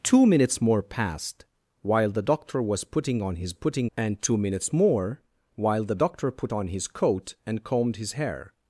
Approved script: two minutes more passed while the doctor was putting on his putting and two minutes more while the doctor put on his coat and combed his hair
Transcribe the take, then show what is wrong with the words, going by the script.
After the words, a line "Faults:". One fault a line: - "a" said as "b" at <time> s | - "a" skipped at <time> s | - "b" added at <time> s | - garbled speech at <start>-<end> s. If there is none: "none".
two minutes more passed while the doctor was putting on his putting and two minutes more while the doctor put on his coat and combed his hair
Faults:
none